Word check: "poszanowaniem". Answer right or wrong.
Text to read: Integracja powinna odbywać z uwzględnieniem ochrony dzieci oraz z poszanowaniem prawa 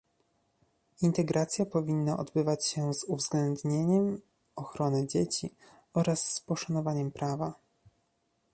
right